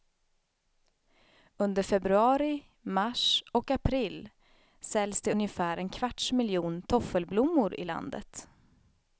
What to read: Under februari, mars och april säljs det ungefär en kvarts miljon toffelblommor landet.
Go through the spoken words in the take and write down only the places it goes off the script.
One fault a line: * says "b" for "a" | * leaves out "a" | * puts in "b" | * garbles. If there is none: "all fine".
* puts in "i"